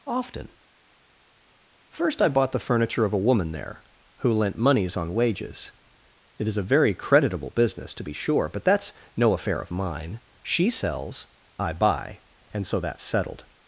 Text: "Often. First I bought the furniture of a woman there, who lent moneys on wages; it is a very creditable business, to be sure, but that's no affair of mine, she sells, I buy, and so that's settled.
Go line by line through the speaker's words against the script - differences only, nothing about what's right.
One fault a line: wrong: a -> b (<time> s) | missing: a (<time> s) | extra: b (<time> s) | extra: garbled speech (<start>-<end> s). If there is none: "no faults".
no faults